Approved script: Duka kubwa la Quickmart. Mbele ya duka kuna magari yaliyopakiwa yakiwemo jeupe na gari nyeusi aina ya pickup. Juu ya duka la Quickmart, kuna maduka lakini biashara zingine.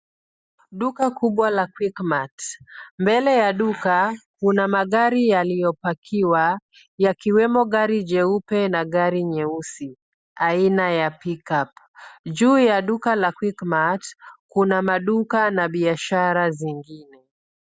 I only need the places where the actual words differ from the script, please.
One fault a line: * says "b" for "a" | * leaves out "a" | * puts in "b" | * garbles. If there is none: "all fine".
* puts in "gari"
* says "na" for "lakini"